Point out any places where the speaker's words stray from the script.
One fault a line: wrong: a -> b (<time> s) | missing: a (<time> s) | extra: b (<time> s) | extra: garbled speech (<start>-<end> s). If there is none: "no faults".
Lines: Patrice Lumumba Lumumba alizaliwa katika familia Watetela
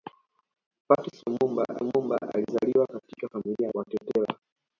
no faults